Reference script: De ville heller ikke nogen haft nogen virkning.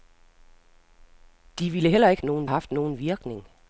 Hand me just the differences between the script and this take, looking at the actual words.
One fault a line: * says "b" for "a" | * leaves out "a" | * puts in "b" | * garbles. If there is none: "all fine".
all fine